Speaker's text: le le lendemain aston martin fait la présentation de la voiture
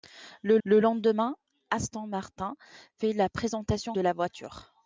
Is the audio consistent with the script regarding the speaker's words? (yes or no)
yes